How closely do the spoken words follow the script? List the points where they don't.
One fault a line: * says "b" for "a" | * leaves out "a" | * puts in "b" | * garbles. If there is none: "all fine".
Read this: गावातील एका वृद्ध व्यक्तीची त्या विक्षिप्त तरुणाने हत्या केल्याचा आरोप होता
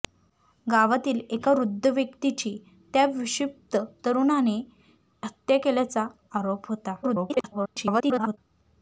* garbles